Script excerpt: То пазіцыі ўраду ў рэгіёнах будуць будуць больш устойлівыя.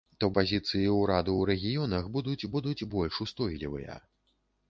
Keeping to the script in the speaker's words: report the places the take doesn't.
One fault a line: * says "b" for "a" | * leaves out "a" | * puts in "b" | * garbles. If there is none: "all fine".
all fine